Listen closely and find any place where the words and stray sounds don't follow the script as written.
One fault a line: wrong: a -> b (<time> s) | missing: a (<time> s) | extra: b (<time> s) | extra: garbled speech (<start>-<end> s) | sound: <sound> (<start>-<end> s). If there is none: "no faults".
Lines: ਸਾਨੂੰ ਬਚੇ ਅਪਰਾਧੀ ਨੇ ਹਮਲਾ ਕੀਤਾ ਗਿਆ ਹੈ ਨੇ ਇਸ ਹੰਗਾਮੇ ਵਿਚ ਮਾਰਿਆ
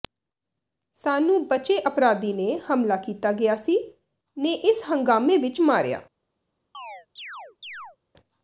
wrong: ਹੈ -> ਸੀ (3.6 s)
sound: chirp (6.7-8.0 s)